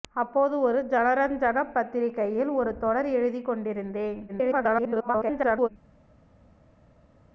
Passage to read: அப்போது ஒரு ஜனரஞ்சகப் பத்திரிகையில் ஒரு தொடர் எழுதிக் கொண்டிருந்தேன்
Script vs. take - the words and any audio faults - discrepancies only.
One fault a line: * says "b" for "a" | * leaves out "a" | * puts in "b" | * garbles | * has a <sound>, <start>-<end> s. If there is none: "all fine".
* garbles